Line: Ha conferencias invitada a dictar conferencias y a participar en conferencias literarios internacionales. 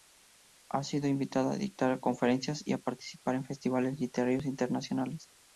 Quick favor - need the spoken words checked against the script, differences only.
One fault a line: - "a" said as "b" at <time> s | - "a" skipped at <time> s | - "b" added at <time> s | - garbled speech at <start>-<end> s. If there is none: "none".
- "conferencias" said as "sido" at 0.8 s
- "conferencias" said as "festivales" at 3.4 s